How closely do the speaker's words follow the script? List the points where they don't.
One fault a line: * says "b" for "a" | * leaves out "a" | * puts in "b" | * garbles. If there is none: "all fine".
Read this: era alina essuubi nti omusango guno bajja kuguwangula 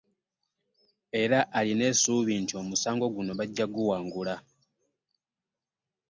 all fine